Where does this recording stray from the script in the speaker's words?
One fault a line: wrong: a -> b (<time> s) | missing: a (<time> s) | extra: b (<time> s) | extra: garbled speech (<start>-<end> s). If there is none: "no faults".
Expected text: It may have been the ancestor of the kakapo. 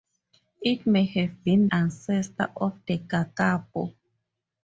missing: the (1.7 s)